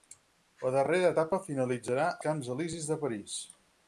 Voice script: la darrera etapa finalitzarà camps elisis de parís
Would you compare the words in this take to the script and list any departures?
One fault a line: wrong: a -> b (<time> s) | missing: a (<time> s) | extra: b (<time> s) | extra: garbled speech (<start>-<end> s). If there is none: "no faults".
no faults